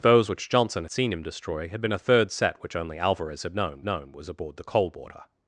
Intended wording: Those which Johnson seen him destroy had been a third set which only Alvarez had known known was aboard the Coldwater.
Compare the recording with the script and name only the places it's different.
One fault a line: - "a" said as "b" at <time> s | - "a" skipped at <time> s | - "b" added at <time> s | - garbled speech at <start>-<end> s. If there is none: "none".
none